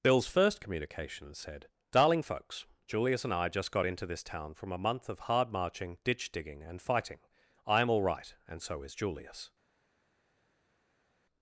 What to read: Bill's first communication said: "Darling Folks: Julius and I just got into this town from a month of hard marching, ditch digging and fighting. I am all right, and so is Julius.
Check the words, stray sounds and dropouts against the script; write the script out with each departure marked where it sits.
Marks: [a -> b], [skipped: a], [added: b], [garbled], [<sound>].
Bill's first communication said: "Darling Folks: Julius and I just got into this town from a month of hard marching, ditch digging and fighting. I am all right, and so is Julius.